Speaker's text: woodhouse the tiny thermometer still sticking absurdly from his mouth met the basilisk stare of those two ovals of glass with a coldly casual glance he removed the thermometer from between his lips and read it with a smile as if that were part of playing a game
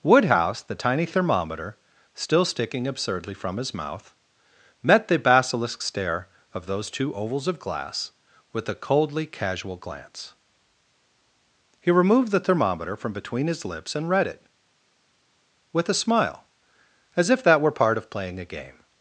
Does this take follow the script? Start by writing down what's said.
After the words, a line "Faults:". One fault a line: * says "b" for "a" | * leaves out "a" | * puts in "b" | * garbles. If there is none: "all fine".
woodhouse the tiny thermometer still sticking absurdly from his mouth met the basilisk stare of those two ovals of glass with a coldly casual glance he removed the thermometer from between his lips and read it with a smile as if that were part of playing a game
Faults:
all fine